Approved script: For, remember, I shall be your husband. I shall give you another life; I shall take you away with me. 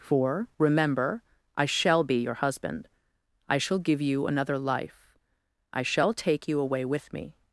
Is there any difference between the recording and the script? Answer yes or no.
no